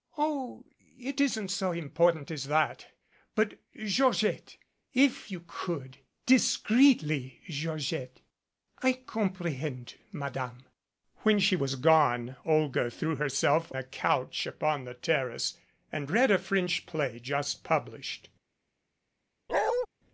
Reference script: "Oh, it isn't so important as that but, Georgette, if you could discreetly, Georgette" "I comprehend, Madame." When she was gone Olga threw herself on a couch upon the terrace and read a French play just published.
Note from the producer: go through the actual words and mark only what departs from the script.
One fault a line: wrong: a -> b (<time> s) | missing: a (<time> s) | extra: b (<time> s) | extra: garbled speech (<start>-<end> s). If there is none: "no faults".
missing: on (13.7 s)